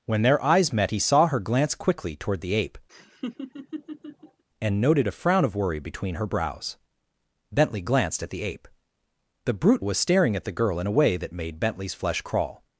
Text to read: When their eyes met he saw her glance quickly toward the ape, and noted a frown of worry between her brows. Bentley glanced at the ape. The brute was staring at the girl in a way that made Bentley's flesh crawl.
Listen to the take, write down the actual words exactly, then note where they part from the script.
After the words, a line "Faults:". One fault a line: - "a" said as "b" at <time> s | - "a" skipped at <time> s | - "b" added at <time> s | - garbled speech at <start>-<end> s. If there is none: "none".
When their eyes met he saw her glance quickly toward the ape, and noted a frown of worry between her brows. Bentley glanced at the ape. The brute was staring at the girl in a way that made Bentley's flesh crawl.
Faults:
none